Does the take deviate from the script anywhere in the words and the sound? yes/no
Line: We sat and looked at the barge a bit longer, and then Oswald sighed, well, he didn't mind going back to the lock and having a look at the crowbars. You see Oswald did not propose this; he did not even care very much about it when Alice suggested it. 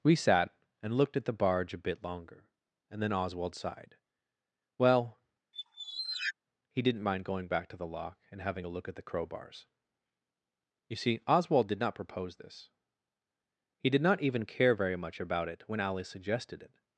yes